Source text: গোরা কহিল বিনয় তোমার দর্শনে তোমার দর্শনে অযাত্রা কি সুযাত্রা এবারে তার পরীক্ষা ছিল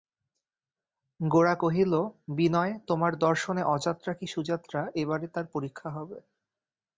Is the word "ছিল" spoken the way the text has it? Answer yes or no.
no